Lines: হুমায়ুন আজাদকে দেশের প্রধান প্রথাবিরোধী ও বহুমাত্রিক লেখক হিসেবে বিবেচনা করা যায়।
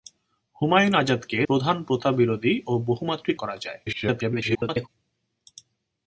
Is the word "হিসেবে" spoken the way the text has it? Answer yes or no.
no